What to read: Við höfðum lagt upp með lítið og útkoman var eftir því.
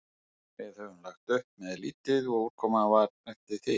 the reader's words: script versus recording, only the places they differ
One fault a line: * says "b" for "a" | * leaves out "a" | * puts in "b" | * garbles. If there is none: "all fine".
all fine